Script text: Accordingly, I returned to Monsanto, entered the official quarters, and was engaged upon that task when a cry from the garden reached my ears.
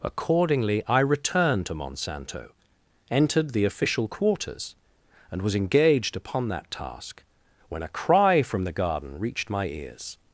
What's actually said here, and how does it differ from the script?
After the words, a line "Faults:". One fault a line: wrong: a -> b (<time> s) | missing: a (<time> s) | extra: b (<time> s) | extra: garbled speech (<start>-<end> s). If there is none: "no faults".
Accordingly, I returned to Monsanto, entered the official quarters, and was engaged upon that task when a cry from the garden reached my ears.
Faults:
no faults